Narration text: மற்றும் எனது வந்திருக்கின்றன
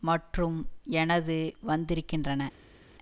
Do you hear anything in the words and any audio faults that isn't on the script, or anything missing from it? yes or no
no